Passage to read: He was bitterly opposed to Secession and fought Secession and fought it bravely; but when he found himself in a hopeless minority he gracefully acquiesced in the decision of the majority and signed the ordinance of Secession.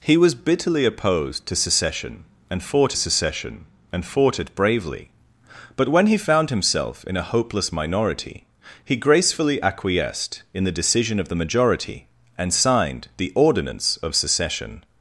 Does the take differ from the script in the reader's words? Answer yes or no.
no